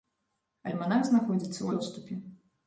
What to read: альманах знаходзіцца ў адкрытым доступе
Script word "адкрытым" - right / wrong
wrong